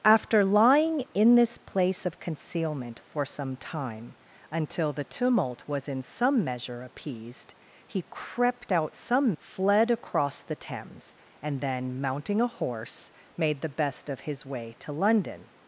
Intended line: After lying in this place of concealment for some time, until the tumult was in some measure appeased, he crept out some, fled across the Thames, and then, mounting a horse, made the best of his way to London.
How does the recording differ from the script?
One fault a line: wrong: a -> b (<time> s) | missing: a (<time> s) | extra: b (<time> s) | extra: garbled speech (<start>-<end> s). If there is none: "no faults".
no faults